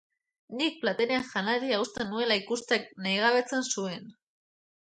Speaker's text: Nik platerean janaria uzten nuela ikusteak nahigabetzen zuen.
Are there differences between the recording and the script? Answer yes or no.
no